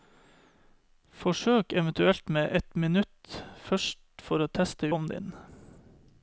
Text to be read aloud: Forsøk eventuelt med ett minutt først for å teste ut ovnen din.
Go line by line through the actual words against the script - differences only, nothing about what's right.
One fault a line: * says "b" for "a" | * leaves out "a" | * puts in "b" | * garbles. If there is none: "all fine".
* leaves out "ut"